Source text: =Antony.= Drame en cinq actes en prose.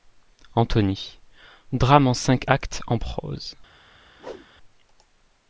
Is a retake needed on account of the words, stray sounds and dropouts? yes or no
yes